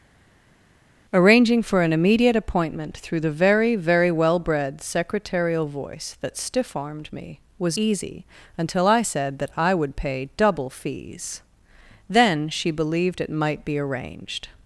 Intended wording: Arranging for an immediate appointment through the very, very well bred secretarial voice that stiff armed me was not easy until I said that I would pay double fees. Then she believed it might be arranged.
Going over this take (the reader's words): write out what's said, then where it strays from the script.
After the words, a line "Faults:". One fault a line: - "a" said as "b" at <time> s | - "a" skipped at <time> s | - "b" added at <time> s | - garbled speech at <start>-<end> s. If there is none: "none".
Arranging for an immediate appointment through the very, very well bred secretarial voice that stiff armed me was easy until I said that I would pay double fees. Then she believed it might be arranged.
Faults:
- "not" skipped at 7.8 s